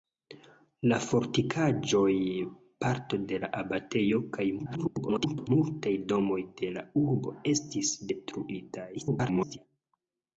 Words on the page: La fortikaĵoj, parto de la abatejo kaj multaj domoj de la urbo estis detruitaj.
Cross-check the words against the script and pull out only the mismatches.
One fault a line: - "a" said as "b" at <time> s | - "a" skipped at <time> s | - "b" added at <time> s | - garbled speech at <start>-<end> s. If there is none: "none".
- garbled speech at 4.6-5.5 s
- garbled speech at 8.9-9.6 s